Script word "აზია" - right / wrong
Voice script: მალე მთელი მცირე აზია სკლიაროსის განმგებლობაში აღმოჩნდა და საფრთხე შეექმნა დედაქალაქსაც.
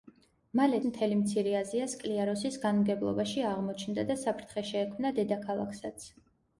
right